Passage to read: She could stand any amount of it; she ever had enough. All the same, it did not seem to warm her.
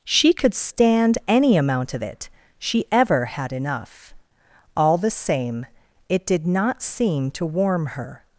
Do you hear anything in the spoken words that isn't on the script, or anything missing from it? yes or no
no